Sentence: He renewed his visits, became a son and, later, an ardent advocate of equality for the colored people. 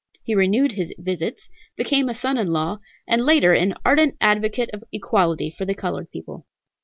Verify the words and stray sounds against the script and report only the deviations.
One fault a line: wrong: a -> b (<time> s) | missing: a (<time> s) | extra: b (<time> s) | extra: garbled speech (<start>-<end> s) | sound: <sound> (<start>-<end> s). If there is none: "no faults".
extra: in law (2.4 s)